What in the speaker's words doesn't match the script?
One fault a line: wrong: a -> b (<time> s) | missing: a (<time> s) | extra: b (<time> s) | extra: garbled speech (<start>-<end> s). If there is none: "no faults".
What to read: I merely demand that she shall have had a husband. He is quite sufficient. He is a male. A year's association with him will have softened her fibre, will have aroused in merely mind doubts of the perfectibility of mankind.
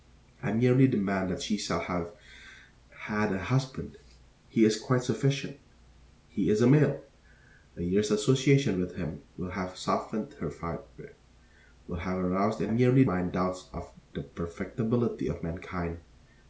no faults